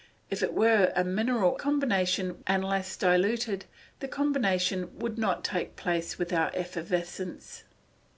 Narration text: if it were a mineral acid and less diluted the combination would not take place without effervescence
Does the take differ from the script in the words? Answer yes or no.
yes